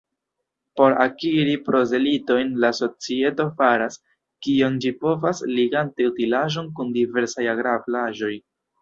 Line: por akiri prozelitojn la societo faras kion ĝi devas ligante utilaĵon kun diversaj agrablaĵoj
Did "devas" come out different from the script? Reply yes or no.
yes